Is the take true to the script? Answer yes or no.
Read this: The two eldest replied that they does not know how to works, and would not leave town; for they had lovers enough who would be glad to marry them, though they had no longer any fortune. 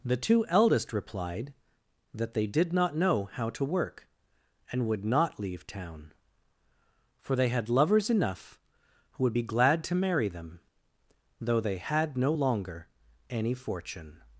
no